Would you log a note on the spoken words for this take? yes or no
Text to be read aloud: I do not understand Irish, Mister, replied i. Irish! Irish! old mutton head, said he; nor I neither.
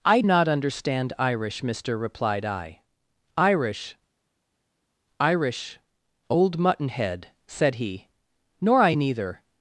yes